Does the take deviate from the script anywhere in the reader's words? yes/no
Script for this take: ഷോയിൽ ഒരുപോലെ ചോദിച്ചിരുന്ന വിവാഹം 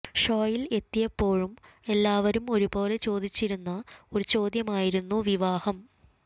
yes